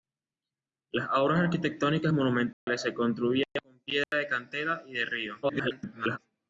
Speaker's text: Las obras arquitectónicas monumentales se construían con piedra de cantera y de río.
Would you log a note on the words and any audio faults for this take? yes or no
yes